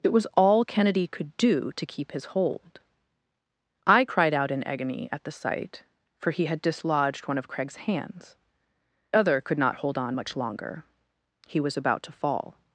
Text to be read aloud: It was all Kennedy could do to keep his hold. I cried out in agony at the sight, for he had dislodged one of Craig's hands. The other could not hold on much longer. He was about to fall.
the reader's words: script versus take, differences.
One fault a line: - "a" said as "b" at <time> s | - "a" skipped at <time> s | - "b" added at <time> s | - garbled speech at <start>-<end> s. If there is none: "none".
- "The" skipped at 8.3 s